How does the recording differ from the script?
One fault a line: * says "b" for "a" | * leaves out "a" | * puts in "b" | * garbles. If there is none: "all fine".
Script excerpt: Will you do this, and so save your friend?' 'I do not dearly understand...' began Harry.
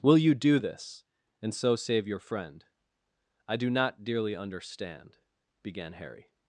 all fine